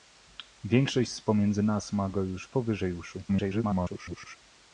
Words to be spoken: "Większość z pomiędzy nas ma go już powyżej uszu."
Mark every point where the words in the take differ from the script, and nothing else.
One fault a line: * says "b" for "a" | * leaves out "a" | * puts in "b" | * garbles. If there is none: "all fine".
* garbles